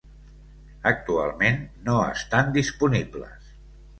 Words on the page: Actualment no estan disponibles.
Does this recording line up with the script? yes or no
yes